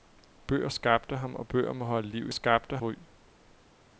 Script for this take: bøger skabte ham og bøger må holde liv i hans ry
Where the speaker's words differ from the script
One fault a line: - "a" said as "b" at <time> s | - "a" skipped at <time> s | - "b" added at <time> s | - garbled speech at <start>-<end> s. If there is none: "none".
- "hans" said as "skabte" at 2.3 s